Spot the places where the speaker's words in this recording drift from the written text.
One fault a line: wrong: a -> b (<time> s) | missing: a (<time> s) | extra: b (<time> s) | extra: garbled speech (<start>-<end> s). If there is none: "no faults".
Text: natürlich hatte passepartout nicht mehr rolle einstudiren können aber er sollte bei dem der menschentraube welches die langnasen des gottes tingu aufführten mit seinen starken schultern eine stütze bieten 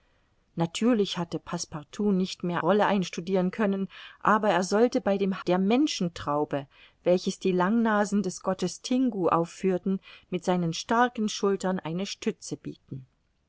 no faults